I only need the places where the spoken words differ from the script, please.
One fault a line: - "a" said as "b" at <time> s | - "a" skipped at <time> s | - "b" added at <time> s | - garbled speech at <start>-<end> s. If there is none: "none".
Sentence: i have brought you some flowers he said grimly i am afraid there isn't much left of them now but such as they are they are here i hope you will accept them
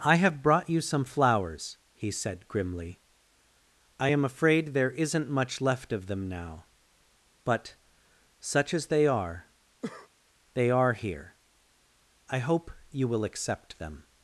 none